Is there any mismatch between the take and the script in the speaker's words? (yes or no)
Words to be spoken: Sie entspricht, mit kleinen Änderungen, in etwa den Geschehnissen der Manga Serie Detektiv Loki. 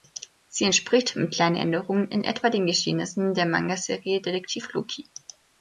no